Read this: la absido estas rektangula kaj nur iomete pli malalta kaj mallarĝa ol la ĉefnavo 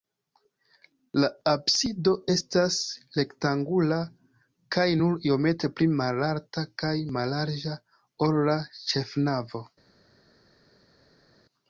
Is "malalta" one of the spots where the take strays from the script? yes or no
no